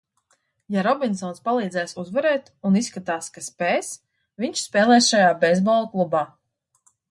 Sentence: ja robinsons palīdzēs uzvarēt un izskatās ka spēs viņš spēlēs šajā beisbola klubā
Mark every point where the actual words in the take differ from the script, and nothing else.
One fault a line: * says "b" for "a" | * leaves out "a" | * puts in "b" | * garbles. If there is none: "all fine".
all fine